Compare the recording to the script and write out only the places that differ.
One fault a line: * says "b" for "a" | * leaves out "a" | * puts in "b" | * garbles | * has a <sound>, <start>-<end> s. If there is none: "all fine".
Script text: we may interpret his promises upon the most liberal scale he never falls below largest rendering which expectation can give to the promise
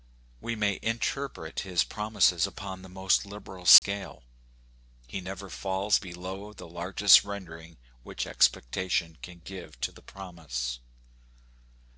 * has a dropout, 3.8-3.8 s
* puts in "the"